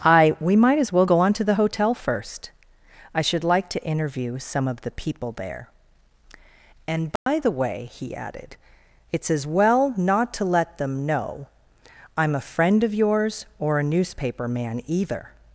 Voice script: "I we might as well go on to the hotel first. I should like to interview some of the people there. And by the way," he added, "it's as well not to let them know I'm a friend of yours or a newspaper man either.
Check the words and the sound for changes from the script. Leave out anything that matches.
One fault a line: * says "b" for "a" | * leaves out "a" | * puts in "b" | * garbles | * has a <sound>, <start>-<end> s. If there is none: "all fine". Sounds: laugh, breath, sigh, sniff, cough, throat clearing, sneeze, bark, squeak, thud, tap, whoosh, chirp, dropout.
* has a dropout, 7.2-7.3 s